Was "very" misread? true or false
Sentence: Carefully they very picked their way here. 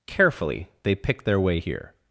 true